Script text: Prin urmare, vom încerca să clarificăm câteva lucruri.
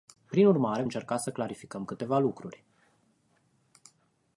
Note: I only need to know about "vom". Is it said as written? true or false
false